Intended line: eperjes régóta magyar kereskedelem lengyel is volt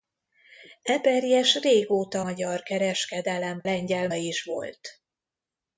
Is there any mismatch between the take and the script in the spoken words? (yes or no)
no